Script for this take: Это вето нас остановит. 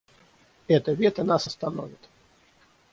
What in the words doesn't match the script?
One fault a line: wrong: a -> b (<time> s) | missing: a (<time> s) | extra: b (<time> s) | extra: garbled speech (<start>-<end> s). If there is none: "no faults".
no faults